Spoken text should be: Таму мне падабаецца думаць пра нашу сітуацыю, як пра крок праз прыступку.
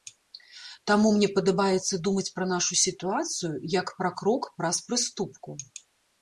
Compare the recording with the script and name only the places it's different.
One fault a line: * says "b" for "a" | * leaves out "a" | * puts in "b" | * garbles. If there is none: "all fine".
all fine